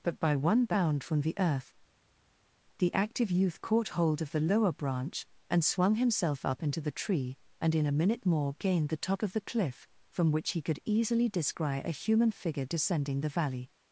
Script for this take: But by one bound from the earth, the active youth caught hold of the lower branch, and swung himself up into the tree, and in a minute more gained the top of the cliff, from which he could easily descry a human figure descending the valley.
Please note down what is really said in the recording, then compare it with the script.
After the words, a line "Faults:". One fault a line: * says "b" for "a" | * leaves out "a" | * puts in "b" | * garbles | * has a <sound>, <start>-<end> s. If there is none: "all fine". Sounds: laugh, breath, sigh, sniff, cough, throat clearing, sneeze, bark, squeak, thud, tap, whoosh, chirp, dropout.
But by one bound from the earth, the active youth caught hold of the lower branch, and swung himself up into the tree, and in a minute more gained the top of the cliff, from which he could easily descry a human figure descending the valley.
Faults:
all fine